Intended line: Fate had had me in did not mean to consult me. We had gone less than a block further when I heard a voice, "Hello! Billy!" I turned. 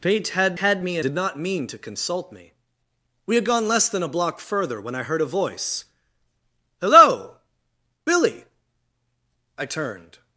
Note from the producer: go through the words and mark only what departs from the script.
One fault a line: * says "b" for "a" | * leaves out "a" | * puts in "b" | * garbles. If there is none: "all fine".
all fine